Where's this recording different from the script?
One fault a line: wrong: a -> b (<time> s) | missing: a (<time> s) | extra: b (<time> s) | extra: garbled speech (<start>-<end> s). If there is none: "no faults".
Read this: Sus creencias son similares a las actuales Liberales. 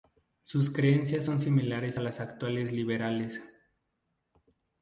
no faults